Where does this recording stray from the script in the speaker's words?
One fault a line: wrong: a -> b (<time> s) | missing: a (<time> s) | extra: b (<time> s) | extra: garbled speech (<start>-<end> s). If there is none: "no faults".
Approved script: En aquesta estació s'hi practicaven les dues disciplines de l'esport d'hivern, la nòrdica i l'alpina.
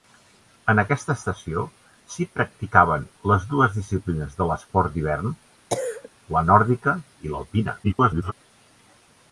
extra: garbled speech (7.8-8.3 s)